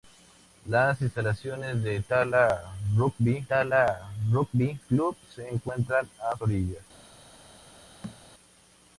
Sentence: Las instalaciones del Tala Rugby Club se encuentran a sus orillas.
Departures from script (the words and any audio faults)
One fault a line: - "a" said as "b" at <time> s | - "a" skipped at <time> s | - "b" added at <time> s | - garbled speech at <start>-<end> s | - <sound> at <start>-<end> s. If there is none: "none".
- "Tala Rugby" added at 3.5 s
- "sus" skipped at 6.4 s
- thud at 8.0-8.2 s